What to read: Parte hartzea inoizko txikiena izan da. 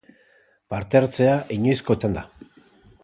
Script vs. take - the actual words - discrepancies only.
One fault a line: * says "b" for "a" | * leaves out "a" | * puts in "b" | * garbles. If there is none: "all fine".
* leaves out "txikiena"